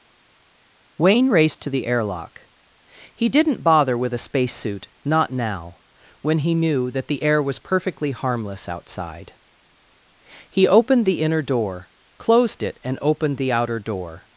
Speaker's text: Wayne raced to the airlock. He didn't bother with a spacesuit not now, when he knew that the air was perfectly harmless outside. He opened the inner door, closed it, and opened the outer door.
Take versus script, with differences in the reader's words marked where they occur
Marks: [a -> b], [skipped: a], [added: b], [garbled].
Wayne raced to the airlock. He didn't bother with a spacesuit not now, when he knew that the air was perfectly harmless outside. He opened the inner door, closed it, and opened the outer door.